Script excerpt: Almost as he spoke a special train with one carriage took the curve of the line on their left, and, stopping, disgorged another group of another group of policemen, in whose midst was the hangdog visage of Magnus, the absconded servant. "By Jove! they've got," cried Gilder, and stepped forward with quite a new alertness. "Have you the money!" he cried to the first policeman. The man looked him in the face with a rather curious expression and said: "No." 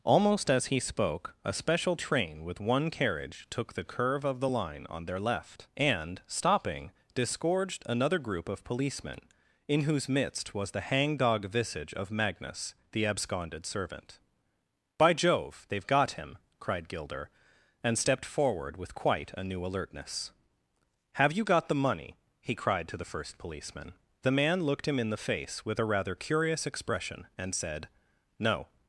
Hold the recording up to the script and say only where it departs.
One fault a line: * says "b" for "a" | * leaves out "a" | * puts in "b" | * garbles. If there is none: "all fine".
* leaves out "another group of"
* puts in "him"
* puts in "got"